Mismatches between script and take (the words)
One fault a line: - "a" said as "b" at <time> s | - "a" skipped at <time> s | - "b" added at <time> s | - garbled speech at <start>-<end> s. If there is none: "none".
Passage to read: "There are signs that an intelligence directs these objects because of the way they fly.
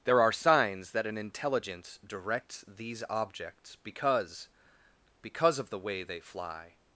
- "because" added at 5.2 s